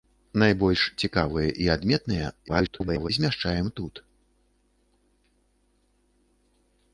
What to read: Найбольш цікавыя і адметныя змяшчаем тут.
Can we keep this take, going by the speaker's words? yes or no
no